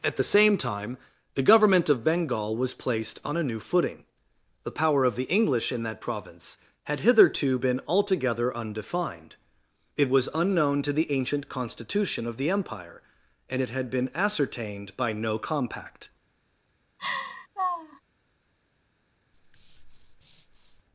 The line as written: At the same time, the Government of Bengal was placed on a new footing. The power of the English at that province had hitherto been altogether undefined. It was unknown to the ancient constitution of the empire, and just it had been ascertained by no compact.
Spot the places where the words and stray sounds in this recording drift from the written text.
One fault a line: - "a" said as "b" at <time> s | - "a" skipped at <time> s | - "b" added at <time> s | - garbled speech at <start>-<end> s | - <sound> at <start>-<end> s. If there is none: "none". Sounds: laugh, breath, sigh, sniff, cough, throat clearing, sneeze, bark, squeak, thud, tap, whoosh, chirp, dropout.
- "at" said as "in" at 5.7 s
- "just" skipped at 13.6 s
- laugh at 17.0-18.0 s
- breath at 19.3-20.8 s